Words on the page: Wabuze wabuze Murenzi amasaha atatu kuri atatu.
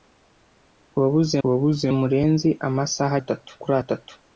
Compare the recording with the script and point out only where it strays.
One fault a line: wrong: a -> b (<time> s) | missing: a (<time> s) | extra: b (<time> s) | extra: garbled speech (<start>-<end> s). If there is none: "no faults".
no faults